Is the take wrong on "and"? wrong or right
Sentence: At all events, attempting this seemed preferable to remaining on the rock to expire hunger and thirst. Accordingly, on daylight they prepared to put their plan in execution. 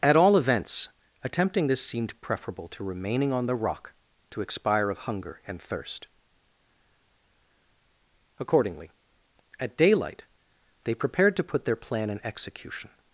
right